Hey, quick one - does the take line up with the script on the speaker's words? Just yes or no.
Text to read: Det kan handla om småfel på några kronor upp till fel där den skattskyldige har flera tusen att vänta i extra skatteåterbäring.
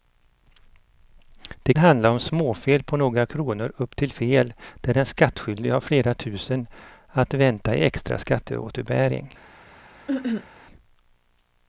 no